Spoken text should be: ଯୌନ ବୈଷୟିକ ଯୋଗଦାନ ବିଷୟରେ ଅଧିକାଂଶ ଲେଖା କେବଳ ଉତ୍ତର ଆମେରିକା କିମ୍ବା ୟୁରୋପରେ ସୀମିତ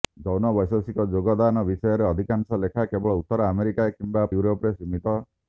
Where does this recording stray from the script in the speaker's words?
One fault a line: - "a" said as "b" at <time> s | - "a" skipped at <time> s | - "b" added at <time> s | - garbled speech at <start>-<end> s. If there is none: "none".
none